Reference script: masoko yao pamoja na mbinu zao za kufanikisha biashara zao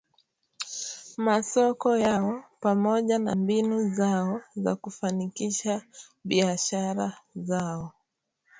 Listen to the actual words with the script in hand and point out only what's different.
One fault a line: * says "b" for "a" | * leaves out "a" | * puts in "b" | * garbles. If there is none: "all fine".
all fine